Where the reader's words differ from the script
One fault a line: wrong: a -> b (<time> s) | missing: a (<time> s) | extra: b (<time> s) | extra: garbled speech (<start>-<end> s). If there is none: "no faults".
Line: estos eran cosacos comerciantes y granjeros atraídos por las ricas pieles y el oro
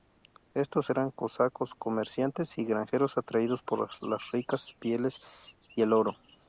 no faults